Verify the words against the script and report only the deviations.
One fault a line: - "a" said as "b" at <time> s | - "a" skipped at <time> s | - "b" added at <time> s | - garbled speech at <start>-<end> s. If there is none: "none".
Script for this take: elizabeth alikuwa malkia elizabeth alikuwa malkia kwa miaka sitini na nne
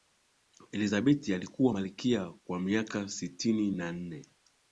- "elizabeth alikuwa malkia" skipped at 2.3 s